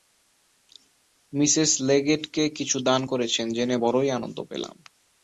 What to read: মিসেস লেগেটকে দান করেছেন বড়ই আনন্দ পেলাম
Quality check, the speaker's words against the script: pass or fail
fail